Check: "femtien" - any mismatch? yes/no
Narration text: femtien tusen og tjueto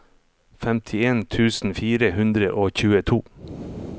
no